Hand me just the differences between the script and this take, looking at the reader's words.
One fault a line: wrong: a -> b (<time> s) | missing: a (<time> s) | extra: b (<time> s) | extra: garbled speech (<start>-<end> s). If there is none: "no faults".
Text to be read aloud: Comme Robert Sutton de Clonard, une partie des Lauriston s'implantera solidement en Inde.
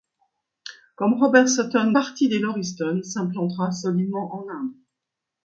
missing: de Clonard une (1.9 s)